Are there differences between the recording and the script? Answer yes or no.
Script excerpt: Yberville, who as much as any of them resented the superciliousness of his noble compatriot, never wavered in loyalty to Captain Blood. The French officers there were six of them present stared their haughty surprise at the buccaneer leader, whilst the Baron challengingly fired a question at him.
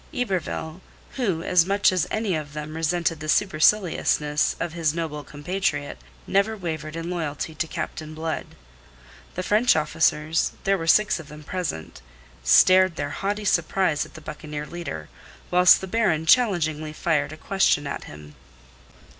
no